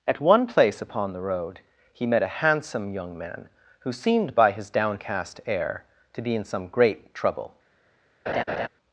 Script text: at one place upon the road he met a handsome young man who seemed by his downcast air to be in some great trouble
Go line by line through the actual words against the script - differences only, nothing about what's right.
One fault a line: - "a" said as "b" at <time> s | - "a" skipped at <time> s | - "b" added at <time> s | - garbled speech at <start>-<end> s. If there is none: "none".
none